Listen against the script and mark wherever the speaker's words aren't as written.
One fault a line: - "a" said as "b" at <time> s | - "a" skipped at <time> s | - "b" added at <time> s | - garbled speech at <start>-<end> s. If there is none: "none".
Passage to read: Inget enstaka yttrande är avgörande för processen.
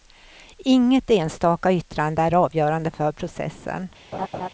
none